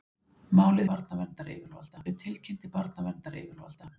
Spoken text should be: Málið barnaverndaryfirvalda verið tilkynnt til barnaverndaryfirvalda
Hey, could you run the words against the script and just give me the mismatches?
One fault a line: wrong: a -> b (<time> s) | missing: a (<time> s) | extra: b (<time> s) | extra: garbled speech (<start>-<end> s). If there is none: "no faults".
no faults